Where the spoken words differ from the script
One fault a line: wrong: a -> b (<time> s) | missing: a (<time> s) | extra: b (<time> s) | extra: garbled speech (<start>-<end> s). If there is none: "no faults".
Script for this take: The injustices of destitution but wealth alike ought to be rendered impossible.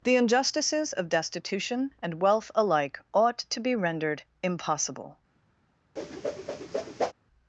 wrong: but -> and (2.0 s)